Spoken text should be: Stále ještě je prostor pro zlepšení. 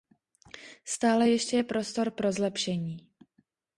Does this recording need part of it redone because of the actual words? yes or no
no